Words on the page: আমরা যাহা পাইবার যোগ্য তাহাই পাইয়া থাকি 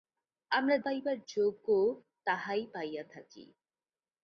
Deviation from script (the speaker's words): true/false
true